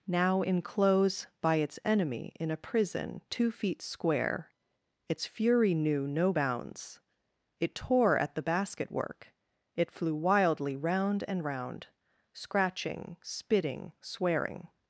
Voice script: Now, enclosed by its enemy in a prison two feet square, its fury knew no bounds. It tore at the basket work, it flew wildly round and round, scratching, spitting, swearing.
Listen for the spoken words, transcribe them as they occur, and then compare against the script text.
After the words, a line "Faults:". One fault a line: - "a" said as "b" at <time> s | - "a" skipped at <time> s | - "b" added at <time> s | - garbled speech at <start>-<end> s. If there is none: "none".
Now, enclose by its enemy in a prison two feet square, its fury knew no bounds. It tore at the basket work, it flew wildly round and round, scratching, spitting, swearing.
Faults:
- "enclosed" said as "enclose" at 0.4 s